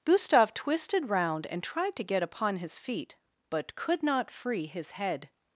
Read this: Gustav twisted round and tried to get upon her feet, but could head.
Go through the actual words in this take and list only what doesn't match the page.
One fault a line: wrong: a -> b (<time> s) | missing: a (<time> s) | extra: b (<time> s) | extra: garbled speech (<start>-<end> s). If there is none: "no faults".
wrong: her -> his (2.6 s)
extra: not free his (4.0 s)